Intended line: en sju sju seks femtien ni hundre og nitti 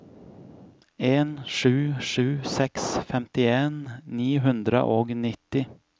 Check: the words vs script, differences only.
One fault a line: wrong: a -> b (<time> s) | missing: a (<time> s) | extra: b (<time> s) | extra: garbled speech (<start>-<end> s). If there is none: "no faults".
no faults